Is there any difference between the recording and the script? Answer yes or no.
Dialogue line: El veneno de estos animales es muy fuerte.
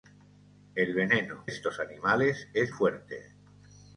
yes